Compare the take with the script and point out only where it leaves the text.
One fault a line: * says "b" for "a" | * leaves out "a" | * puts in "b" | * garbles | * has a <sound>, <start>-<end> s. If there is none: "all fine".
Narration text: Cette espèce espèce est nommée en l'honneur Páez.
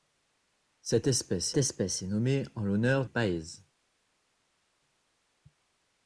all fine